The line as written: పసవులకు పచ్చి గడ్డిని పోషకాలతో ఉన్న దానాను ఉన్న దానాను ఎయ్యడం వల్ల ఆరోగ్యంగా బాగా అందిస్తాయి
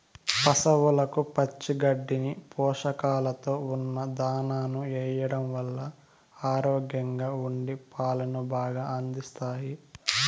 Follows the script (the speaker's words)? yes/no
no